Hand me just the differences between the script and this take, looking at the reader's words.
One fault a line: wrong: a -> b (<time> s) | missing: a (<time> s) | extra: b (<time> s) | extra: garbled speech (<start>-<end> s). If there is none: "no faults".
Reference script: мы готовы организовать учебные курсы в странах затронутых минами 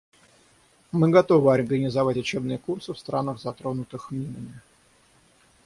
no faults